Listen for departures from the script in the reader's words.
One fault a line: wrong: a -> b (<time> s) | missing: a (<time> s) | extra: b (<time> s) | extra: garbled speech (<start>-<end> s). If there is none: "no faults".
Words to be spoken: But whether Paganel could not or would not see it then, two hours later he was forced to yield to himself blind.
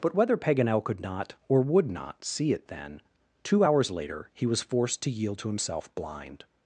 no faults